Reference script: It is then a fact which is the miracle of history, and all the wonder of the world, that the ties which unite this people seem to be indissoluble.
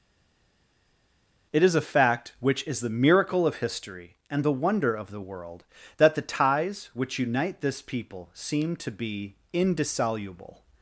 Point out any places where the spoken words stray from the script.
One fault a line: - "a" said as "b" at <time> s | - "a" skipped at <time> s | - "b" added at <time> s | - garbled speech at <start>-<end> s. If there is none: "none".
- "then" skipped at 1.7 s
- "all" skipped at 4.4 s